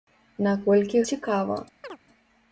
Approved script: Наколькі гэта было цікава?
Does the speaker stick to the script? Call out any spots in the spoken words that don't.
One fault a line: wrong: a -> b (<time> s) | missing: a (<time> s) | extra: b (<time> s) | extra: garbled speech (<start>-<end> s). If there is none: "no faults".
missing: гэта было (1.0 s)